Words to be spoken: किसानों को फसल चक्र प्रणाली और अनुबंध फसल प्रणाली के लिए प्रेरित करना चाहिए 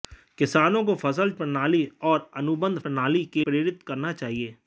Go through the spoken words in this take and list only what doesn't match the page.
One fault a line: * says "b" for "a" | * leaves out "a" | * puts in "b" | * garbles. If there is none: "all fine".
* leaves out "चक्र"
* leaves out "फसल"
* leaves out "लिए"